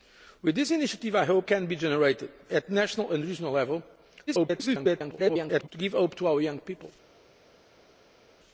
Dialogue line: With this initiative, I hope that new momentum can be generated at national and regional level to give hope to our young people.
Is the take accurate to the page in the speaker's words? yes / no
no